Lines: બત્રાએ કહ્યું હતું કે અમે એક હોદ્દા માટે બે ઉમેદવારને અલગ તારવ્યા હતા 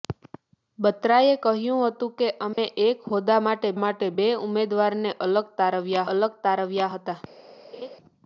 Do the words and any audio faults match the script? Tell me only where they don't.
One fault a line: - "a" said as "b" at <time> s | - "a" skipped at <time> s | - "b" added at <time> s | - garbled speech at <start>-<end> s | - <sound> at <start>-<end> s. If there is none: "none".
- dropout at 2.5-2.6 s
- "માટે" added at 3.8 s
- "અલગ તારવ્યા" added at 6.1 s
- laugh at 7.7-8.0 s